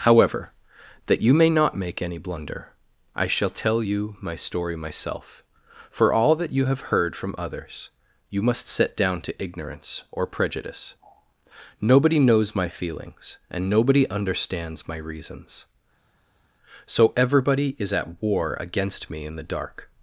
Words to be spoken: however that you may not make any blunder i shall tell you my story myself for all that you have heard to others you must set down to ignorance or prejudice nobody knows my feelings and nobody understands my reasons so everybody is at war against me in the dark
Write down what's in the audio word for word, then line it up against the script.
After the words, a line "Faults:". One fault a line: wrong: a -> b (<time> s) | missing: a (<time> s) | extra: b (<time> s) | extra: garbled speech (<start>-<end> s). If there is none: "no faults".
however that you may not make any blunder i shall tell you my story myself for all that you have heard from others you must set down to ignorance or prejudice nobody knows my feelings and nobody understands my reasons so everybody is at war against me in the dark
Faults:
wrong: to -> from (7.1 s)